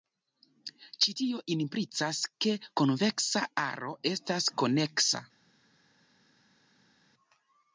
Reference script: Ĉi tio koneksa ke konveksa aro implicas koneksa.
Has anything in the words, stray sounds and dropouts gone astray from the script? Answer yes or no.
yes